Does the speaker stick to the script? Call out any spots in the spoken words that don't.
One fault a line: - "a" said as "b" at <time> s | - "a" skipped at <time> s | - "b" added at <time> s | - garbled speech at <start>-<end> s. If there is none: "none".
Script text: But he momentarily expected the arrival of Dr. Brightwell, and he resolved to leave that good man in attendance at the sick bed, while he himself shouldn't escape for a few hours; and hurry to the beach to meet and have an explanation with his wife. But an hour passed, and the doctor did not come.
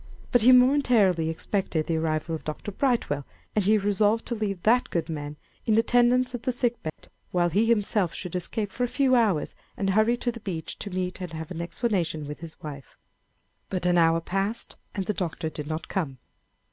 - "shouldn't" said as "should" at 8.1 s